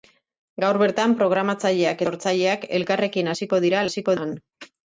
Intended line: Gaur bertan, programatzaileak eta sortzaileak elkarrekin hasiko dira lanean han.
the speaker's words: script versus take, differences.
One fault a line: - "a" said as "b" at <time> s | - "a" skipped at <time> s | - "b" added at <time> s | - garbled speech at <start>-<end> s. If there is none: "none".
- "eta" skipped at 2.0 s
- "lanean" said as "hasiko" at 3.9 s